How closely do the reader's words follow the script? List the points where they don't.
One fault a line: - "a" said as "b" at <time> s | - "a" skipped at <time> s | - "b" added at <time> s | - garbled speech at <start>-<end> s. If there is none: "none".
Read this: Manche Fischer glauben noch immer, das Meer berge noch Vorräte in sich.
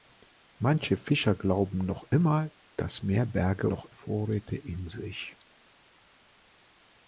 none